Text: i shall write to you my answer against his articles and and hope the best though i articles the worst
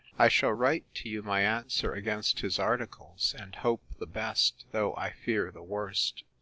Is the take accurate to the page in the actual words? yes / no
no